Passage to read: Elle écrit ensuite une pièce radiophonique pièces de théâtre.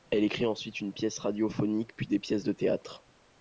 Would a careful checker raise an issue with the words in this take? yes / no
yes